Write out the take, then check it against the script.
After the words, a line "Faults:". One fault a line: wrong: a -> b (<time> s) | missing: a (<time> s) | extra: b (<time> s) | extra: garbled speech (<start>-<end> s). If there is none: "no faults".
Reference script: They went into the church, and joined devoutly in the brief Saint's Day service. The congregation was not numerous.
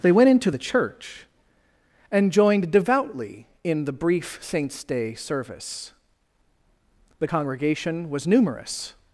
They went into the church, and joined devoutly in the brief Saint's Day service. The congregation was numerous.
Faults:
missing: not (8.3 s)